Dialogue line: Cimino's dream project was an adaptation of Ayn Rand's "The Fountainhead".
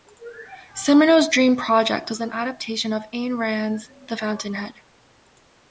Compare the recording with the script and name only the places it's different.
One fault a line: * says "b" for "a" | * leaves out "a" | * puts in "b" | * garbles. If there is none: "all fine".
all fine